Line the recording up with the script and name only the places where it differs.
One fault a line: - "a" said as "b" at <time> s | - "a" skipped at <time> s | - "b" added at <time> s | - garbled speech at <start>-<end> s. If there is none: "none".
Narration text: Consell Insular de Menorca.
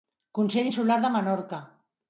none